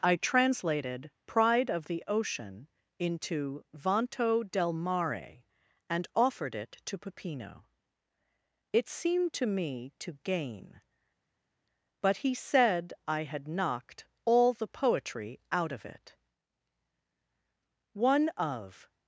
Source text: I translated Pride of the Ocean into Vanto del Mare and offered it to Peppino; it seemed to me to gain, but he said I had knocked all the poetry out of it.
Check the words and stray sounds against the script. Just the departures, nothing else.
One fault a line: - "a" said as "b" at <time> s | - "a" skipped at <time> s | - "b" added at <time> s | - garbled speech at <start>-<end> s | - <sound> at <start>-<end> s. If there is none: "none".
- "One of" added at 17.9 s